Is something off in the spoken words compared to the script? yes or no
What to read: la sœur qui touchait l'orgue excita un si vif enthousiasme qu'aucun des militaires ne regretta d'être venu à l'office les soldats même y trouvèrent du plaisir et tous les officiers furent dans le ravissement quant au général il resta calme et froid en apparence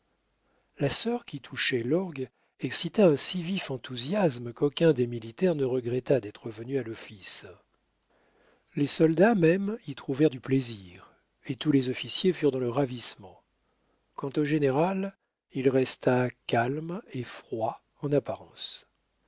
no